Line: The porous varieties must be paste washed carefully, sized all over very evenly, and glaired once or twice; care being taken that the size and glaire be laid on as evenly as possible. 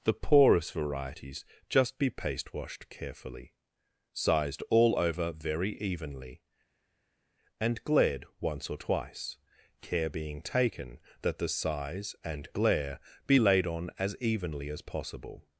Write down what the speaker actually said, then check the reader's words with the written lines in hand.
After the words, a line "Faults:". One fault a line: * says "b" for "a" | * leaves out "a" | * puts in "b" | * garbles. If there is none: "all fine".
The porous varieties just be paste washed carefully, sized all over very evenly, and glaired once or twice; care being taken that the size and glaire be laid on as evenly as possible.
Faults:
* says "just" for "must"